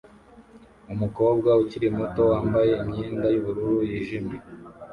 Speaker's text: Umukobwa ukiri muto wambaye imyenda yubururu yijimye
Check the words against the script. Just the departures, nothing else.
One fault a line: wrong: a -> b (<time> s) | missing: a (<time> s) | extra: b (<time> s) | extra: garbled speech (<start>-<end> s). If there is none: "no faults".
no faults